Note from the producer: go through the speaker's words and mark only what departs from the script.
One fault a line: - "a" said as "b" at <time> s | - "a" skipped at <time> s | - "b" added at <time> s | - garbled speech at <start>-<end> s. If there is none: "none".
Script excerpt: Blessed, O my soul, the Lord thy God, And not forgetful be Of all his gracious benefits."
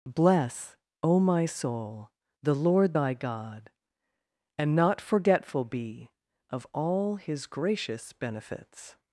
- "Blessed" said as "Bless" at 0.1 s